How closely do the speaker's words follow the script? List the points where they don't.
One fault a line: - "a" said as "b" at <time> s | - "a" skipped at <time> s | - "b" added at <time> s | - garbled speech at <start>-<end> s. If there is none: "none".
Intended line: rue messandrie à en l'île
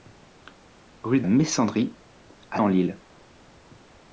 none